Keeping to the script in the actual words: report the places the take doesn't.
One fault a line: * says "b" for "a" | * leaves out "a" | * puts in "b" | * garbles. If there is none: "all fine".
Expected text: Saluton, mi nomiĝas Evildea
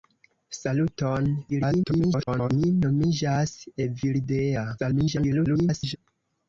* garbles
* garbles